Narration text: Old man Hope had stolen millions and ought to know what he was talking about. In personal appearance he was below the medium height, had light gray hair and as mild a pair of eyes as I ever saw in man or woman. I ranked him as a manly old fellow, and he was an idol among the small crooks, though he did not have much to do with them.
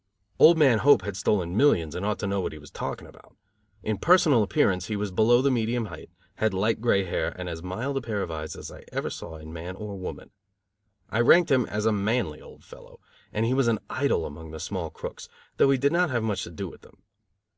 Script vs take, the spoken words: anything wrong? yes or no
no